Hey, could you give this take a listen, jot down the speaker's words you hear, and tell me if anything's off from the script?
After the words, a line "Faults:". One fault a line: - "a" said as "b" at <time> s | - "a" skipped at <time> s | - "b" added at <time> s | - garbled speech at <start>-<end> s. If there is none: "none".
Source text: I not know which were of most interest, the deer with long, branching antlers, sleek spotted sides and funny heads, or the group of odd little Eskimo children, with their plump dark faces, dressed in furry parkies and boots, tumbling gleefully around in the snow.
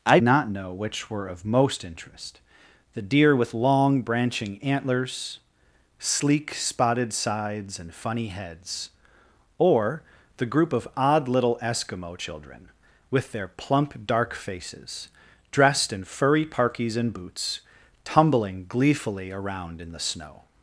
I not know which were of most interest, the deer with long, branching antlers, sleek spotted sides and funny heads, or the group of odd little Eskimo children, with their plump dark faces, dressed in furry parkies and boots, tumbling gleefully around in the snow.
Faults:
none